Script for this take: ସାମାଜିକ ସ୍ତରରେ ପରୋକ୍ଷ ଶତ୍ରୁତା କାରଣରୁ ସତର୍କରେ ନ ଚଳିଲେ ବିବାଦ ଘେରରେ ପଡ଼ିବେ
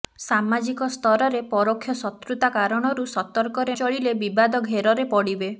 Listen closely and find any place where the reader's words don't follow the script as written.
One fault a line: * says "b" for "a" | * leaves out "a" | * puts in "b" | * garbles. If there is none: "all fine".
* leaves out "ନ"